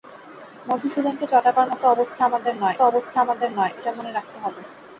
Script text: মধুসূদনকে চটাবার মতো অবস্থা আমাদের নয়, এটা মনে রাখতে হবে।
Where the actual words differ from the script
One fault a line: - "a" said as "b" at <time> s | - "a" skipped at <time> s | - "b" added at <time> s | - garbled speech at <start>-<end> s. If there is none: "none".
- "অবস্থা আমাদের নয়" added at 2.8 s